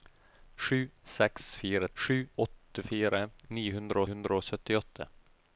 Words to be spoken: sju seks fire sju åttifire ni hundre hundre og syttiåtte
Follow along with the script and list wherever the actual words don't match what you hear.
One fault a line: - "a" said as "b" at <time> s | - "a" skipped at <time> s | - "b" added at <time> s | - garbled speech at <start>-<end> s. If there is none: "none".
none